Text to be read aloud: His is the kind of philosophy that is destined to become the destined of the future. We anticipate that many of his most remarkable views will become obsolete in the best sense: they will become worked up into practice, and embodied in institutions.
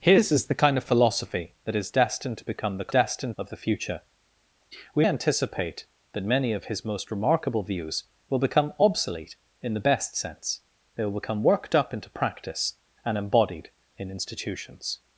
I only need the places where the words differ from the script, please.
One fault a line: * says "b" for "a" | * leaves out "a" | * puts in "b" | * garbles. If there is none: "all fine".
all fine